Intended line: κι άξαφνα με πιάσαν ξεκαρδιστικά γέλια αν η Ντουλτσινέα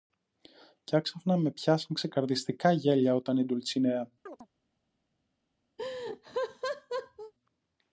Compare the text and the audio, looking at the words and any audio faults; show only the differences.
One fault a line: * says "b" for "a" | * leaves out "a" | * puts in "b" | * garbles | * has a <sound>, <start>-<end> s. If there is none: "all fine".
* says "όταν" for "αν"
* has a chirp, 4.3-4.5 s
* has a laugh, 5.8-7.3 s